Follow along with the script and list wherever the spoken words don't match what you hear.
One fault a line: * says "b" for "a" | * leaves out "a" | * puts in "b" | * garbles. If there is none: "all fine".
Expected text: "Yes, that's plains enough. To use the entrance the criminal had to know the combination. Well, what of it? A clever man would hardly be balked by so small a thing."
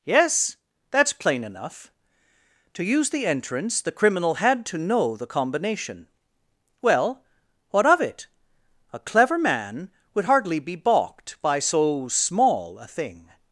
* says "plain" for "plains"